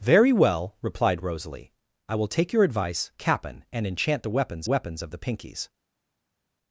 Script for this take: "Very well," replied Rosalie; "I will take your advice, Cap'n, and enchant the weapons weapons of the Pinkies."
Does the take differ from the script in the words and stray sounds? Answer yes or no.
no